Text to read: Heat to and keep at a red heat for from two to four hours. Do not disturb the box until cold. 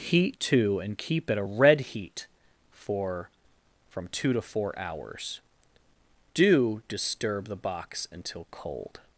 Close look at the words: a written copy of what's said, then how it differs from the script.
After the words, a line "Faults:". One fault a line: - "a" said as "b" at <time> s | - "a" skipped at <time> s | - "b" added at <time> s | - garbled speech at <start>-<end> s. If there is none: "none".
Heat to and keep at a red heat for from two to four hours. Do disturb the box until cold.
Faults:
- "not" skipped at 6.8 s